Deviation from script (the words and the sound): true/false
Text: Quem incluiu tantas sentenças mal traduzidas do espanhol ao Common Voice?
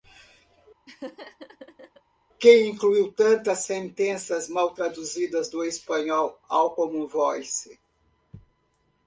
true